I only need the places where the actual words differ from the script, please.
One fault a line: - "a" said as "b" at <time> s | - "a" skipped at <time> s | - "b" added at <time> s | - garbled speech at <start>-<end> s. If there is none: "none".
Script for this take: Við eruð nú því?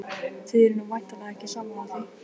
- "Við" said as "Þið" at 0.5 s
- "væntanlega ekki sammála" added at 0.9 s